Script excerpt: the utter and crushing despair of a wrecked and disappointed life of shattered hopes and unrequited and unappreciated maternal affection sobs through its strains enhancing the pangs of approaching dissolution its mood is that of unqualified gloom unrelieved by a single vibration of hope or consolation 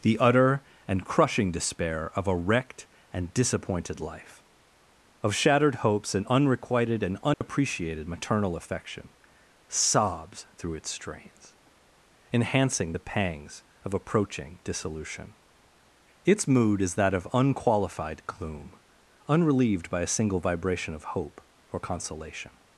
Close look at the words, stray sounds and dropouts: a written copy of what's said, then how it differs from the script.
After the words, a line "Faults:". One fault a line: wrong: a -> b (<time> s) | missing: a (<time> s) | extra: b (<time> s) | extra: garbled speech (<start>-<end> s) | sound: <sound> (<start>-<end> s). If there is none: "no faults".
the utter and crushing despair of a wrecked and disappointed life of shattered hopes and unrequited and unappreciated maternal affection sobs through its strains enhancing the pangs of approaching dissolution its mood is that of unqualified gloom unrelieved by a single vibration of hope or consolation
Faults:
sound: dropout (7.3-7.4 s)